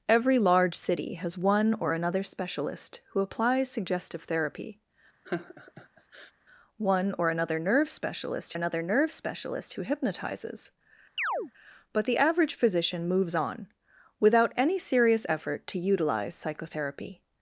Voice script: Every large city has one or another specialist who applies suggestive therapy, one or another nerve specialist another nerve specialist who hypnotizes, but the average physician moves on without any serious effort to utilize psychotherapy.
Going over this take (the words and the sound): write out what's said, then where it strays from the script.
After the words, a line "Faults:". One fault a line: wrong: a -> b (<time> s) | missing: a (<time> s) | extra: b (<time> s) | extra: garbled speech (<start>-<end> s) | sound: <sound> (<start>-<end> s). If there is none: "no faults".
Every large city has one or another specialist who applies suggestive therapy, one or another nerve specialist another nerve specialist who hypnotizes, but the average physician moves on without any serious effort to utilize psychotherapy.
Faults:
sound: laugh (5.2-6.3 s)
sound: chirp (11.2-11.5 s)